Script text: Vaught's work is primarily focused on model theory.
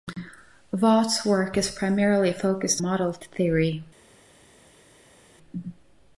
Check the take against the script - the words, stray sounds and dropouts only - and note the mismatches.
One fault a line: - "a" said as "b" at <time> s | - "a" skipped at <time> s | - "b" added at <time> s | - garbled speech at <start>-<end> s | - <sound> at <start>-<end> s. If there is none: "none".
- "on" skipped at 2.8 s